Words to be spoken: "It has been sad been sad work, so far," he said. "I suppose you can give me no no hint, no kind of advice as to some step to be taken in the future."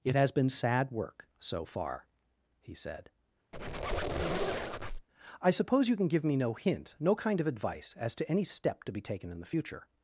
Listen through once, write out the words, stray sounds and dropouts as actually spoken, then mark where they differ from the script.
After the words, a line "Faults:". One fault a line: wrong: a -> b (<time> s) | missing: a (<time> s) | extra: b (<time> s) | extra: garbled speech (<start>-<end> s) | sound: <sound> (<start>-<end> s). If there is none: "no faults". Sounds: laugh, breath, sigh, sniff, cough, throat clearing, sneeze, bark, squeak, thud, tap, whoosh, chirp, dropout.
"It has been sad work, so far," he said. "I suppose you can give me no hint, no kind of advice as to any step to be taken in the future."
Faults:
missing: been sad (0.9 s)
sound: squeak (3.5-5.1 s)
missing: no (6.5 s)
wrong: some -> any (8.3 s)